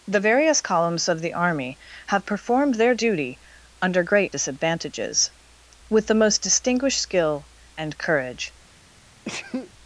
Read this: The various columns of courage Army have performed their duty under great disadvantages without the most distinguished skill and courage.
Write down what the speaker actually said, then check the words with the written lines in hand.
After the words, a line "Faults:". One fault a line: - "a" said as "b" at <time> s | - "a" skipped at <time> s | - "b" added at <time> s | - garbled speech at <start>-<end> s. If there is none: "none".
The various columns of the Army have performed their duty under great disadvantages with the most distinguished skill and courage.
Faults:
- "courage" said as "the" at 1.2 s
- "without" said as "with" at 5.9 s